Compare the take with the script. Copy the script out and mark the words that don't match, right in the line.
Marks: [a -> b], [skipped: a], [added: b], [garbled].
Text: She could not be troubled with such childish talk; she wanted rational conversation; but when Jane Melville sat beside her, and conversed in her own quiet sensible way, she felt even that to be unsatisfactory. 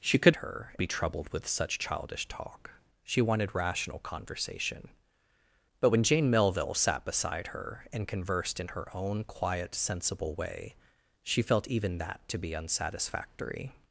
She could [not -> her] be troubled with such childish talk; she wanted rational conversation; but when Jane Melville sat beside her, and conversed in her own quiet sensible way, she felt even that to be unsatisfactory.